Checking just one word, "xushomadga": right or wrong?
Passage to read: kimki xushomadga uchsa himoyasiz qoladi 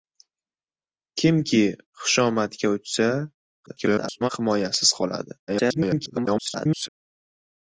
right